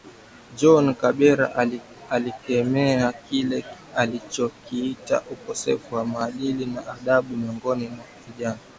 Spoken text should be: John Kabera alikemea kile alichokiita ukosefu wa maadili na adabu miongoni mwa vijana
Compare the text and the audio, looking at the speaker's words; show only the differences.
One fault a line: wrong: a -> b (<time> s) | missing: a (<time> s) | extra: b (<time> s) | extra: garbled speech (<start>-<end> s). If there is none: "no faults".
no faults